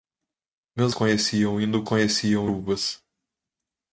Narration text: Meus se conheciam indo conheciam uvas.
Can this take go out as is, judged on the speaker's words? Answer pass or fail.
pass